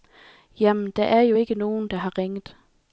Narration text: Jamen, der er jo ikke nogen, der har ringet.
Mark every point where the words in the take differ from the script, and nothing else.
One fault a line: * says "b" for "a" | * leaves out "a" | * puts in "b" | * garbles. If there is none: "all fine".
all fine